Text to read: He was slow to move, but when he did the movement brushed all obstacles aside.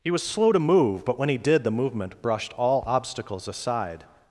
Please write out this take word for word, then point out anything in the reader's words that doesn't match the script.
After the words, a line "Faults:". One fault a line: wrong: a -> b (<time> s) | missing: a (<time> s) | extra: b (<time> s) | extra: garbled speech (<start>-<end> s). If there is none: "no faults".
He was slow to move, but when he did the movement brushed all obstacles aside.
Faults:
no faults